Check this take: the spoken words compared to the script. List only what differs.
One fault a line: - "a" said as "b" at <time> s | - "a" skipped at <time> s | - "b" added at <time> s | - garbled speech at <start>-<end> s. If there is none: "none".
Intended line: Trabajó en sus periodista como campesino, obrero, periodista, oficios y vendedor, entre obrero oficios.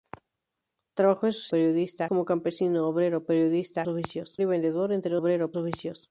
none